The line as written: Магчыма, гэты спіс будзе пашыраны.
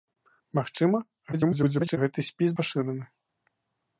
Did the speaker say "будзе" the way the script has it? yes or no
no